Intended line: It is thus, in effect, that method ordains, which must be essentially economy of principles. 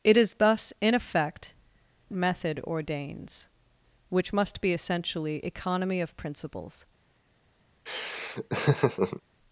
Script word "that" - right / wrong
wrong